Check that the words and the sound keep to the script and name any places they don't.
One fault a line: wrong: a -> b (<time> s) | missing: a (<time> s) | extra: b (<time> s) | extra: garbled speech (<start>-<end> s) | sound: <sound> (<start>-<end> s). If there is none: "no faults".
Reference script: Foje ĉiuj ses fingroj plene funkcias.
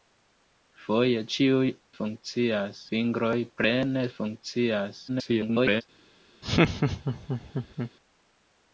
wrong: ses -> funkcias (2.0 s)
extra: garbled speech (5.1-5.8 s)
sound: laugh (6.4-7.9 s)